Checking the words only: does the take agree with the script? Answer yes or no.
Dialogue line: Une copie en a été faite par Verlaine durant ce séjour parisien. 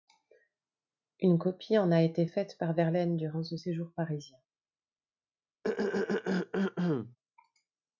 yes